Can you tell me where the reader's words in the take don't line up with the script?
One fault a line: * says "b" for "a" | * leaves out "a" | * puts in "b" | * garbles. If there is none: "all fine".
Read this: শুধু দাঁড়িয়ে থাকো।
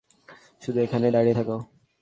* puts in "এখানেই"